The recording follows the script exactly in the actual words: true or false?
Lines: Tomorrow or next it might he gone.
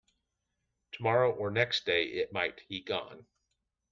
false